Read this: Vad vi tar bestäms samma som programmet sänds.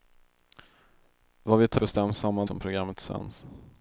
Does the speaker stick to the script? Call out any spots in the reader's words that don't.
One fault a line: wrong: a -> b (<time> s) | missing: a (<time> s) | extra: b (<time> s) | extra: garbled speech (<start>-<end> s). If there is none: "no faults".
no faults